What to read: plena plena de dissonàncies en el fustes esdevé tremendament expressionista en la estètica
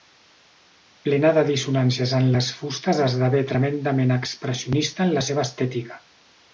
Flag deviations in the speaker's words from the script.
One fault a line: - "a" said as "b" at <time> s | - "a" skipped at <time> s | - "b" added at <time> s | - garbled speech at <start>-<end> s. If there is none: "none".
- "plena" skipped at 1.3 s
- "el" said as "les" at 2.4 s
- "seva" added at 5.3 s